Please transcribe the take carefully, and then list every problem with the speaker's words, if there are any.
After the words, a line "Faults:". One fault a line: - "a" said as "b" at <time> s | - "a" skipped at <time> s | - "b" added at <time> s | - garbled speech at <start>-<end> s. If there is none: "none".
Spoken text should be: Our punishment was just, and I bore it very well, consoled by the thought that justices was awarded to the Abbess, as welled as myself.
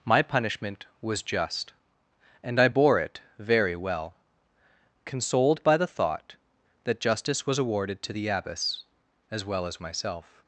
My punishment was just, and I bore it very well, consoled by the thought that justice was awarded to the Abbess, as well as myself.
Faults:
- "Our" said as "My" at 0.1 s
- "justices" said as "justice" at 7.0 s
- "welled" said as "well" at 9.4 s